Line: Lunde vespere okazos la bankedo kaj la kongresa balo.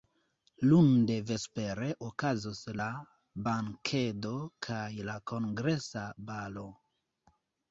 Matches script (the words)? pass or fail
pass